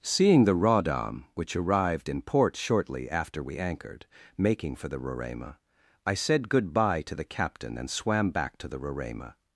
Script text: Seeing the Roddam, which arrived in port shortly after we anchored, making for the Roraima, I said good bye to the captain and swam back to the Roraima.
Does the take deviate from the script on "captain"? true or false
false